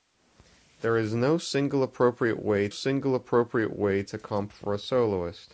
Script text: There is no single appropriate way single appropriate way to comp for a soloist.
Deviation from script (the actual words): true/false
false